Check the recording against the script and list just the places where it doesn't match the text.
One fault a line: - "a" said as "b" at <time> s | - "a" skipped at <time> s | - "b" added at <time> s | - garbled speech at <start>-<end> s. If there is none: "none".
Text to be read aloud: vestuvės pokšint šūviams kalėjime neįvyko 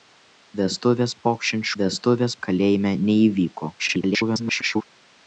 - "šūviams" said as "vestuvės" at 1.8 s
- garbled speech at 3.8-4.8 s